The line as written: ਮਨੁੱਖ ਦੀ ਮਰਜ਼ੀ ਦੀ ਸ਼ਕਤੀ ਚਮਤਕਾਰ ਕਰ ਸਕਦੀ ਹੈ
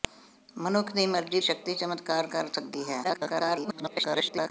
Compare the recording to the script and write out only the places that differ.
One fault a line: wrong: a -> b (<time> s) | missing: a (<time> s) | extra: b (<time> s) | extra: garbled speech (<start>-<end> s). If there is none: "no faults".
missing: ਦੀ (1.4 s)
extra: garbled speech (3.0-4.5 s)